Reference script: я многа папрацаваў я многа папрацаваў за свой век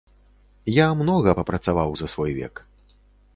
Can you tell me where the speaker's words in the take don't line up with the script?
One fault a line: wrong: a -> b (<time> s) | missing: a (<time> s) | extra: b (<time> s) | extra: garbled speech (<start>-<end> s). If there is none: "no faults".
missing: я многа папрацаваў (1.9 s)